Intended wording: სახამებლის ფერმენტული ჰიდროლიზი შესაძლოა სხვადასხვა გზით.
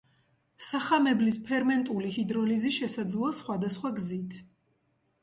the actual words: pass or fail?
pass